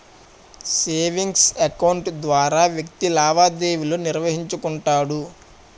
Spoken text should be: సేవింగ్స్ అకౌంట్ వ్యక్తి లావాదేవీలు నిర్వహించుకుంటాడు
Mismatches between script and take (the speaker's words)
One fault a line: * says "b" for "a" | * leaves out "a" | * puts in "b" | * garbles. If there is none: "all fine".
* puts in "ద్వారా"